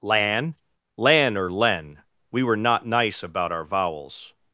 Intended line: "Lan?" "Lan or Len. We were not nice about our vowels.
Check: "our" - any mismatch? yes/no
no